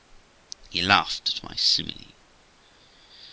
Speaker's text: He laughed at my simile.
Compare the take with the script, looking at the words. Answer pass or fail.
pass